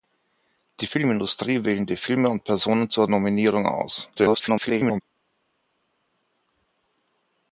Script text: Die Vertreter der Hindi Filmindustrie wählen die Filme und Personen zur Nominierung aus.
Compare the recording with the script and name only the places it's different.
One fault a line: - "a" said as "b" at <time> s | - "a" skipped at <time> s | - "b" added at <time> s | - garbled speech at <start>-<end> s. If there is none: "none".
- "Vertreter der Hindi" skipped at 0.9 s
- garbled speech at 4.1-5.0 s